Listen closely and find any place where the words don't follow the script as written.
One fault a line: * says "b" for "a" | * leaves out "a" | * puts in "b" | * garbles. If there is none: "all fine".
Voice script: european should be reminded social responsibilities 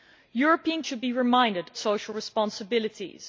all fine